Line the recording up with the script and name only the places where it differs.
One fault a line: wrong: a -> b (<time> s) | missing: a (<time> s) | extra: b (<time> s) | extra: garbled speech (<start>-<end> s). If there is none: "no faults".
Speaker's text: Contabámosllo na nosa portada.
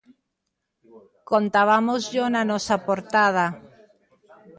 no faults